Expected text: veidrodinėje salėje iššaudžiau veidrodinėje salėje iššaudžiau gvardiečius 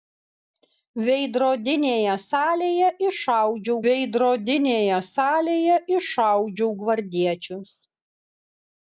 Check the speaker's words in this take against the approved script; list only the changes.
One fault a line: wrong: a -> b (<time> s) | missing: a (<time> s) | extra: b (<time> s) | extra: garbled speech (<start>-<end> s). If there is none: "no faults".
no faults